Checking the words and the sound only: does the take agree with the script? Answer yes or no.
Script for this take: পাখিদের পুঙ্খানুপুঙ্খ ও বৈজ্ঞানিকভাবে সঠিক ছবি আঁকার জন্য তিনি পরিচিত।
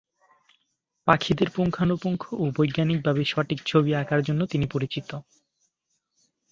yes